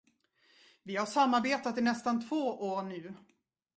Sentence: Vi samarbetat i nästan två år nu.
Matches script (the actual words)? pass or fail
fail